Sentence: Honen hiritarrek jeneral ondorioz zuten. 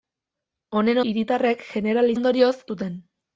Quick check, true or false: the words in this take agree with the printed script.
true